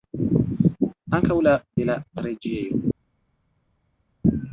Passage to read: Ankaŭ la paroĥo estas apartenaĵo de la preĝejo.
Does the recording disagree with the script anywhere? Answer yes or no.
yes